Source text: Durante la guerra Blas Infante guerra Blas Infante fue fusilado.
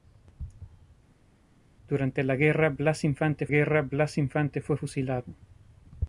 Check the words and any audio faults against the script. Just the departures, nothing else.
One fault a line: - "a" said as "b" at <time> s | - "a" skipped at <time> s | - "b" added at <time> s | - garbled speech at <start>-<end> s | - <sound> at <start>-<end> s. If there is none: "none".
none